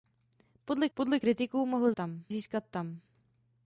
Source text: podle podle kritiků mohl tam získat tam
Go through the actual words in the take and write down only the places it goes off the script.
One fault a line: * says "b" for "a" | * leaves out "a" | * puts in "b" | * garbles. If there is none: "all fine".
all fine